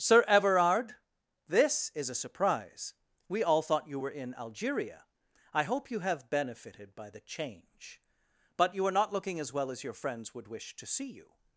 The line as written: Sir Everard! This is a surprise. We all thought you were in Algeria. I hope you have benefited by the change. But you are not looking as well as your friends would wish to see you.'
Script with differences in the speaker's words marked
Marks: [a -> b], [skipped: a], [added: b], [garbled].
Sir Everard! This is a surprise. We all thought you were in Algeria. I hope you have benefited by the change. But you are not looking as well as your friends would wish to see you.'